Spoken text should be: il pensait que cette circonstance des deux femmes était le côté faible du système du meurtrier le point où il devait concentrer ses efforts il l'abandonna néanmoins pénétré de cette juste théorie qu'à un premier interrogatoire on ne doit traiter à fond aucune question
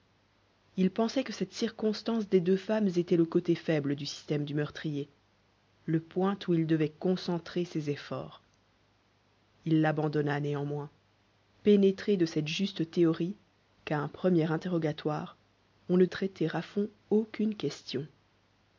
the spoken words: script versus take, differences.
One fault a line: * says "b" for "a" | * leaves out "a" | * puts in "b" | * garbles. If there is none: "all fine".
* leaves out "doit"